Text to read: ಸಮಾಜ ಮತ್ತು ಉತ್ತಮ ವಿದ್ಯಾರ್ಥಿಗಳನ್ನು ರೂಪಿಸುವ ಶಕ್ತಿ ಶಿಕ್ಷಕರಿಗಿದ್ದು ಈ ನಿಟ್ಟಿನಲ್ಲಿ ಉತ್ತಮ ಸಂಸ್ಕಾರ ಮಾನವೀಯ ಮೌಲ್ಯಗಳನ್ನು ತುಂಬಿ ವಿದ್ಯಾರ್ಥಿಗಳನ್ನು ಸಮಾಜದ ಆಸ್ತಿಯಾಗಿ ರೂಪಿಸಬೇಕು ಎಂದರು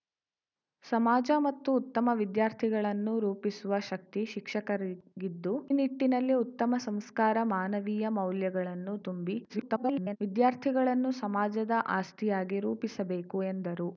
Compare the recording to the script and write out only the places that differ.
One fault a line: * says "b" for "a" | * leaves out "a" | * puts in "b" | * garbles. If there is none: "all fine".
* leaves out "ಈ"
* garbles